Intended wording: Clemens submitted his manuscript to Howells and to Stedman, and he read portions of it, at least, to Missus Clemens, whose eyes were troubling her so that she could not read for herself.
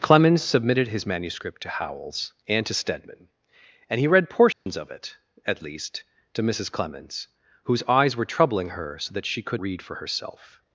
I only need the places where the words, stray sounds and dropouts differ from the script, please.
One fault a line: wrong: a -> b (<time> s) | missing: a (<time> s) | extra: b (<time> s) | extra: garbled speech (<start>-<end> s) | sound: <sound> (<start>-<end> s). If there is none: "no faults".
sound: dropout (4.5-4.7 s)
missing: not (9.6 s)